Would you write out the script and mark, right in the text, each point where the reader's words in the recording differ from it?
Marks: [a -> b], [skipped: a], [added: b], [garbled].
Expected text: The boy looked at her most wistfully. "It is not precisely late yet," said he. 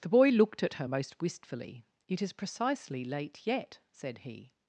The boy looked at her most wistfully. "It is [skipped: not] precisely late yet," said he.